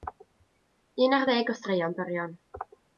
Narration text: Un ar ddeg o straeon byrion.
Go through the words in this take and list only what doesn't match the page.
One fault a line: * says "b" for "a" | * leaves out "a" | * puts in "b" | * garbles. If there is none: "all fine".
all fine